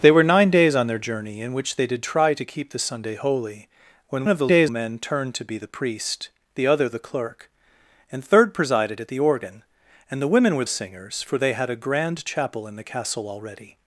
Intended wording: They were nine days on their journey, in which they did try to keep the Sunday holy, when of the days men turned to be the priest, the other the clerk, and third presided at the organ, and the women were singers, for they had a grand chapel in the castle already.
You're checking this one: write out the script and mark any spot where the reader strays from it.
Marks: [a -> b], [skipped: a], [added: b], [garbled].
They were nine days on their journey, in which they did try to keep the Sunday holy, when of the days men turned to be the priest, the other the clerk, and third presided at the organ, and the women were singers, for they had a grand chapel in the castle already.